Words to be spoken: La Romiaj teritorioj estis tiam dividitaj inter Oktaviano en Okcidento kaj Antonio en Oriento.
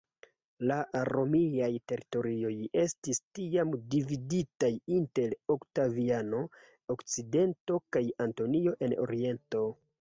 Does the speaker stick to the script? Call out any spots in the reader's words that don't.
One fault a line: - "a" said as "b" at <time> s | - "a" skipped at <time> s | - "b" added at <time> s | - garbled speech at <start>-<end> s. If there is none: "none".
- "en" skipped at 6.4 s